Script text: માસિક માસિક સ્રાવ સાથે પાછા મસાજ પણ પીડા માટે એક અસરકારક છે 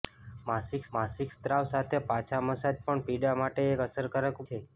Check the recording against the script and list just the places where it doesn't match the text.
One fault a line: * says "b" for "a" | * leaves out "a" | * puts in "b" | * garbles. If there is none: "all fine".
all fine